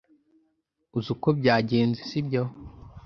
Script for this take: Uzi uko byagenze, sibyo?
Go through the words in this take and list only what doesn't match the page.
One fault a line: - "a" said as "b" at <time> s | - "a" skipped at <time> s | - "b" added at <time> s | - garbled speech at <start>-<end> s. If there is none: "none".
none